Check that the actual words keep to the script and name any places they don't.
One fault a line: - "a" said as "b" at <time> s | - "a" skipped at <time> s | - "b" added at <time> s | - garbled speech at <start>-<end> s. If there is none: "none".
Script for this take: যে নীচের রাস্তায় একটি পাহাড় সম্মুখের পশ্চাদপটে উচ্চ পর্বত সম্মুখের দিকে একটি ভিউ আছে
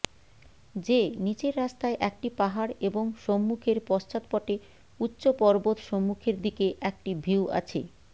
- "এবং" added at 2.8 s